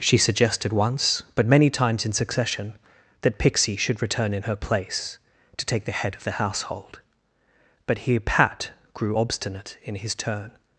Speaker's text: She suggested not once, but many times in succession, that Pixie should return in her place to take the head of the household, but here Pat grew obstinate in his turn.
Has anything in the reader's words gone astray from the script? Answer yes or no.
yes